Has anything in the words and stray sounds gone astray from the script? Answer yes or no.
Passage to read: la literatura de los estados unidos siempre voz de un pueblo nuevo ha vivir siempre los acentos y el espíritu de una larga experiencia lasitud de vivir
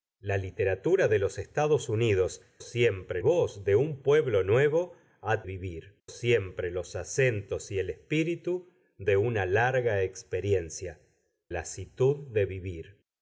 no